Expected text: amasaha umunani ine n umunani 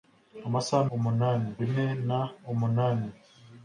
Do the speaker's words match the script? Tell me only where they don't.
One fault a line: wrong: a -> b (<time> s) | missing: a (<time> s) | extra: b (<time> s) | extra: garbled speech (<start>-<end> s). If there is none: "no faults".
no faults